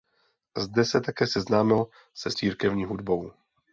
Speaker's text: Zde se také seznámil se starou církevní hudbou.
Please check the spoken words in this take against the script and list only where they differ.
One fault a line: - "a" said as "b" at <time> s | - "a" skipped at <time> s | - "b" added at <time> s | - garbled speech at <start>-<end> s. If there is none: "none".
- "starou" skipped at 2.3 s